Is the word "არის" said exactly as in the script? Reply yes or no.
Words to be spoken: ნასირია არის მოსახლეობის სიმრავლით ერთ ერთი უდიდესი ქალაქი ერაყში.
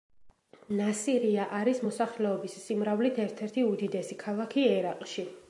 yes